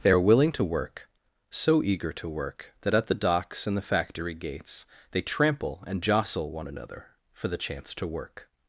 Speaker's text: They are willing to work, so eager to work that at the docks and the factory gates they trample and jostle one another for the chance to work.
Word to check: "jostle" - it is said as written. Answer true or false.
true